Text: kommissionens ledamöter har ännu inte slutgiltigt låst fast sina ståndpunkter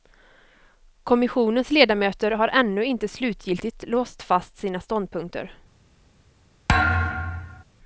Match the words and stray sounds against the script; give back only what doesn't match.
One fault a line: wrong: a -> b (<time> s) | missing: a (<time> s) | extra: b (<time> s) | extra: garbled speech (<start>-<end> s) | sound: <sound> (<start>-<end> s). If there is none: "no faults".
sound: thud (6.7-7.6 s)